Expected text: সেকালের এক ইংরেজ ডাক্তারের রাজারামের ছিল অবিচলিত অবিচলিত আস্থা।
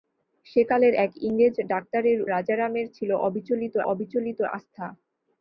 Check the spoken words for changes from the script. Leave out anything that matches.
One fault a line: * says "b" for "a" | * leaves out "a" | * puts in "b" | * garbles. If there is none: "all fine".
all fine